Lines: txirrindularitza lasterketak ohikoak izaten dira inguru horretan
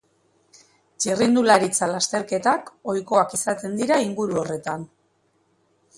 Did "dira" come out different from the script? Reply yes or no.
no